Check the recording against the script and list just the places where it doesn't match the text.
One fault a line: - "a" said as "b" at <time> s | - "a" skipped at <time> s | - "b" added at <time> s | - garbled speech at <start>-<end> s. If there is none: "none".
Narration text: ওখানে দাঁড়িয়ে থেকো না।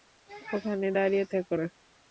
none